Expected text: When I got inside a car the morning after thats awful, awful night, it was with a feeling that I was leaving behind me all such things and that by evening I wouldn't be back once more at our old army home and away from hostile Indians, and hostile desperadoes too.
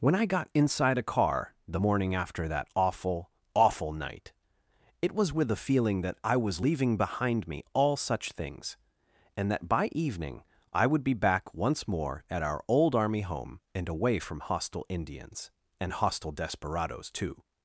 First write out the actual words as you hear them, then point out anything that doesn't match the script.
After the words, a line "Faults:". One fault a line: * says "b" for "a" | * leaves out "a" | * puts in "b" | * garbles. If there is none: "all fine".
When I got inside a car the morning after that awful, awful night, it was with a feeling that I was leaving behind me all such things and that by evening I would be back once more at our old army home and away from hostile Indians, and hostile desperadoes too.
Faults:
* says "that" for "thats"
* says "would" for "wouldn't"